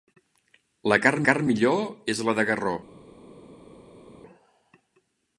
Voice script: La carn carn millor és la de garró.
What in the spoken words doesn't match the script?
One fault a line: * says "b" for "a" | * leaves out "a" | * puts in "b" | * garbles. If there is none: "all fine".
all fine